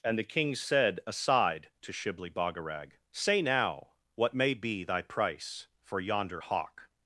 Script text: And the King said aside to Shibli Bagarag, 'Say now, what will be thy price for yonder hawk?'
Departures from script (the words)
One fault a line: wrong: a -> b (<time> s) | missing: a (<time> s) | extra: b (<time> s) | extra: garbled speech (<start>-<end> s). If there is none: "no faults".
wrong: will -> may (4.3 s)